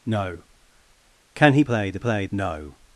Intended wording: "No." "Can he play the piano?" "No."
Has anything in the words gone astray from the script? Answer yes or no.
yes